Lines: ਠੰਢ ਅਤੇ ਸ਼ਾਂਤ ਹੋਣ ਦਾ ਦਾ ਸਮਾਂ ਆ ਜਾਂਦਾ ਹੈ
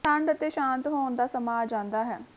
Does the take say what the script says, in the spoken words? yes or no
no